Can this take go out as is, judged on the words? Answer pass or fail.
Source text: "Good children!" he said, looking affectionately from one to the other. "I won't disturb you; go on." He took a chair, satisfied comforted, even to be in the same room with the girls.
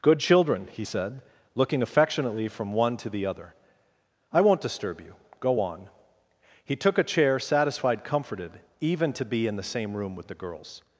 pass